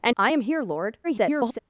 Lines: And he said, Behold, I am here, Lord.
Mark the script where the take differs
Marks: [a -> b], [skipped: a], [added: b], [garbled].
And [skipped: he said, Behold,] I am here, Lord. [garbled]